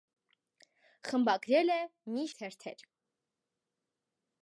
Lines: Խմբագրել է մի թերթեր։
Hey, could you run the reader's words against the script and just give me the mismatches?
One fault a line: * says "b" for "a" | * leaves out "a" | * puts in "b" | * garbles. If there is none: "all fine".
all fine